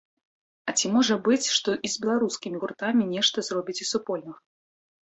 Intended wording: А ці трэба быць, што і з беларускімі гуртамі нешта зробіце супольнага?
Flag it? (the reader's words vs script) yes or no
yes